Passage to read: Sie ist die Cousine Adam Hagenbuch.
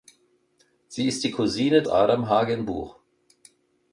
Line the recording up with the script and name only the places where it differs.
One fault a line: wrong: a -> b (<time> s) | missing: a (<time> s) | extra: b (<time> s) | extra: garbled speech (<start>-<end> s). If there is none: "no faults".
no faults